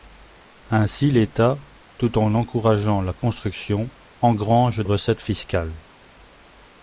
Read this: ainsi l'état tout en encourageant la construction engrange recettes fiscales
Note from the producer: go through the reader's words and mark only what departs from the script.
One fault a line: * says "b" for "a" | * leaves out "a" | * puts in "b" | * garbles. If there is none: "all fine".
all fine